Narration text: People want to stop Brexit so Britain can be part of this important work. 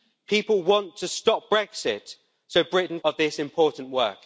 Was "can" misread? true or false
true